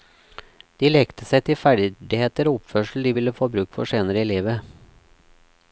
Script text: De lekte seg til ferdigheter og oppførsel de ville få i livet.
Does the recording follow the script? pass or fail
fail